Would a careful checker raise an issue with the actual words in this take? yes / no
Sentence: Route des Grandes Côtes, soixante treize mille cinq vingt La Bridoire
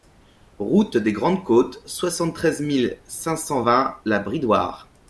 yes